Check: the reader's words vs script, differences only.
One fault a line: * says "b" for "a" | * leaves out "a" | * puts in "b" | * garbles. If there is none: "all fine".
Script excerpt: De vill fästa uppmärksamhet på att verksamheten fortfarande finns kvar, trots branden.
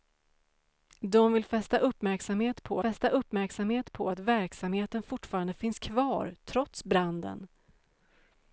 * puts in "fästa uppmärksamhet på"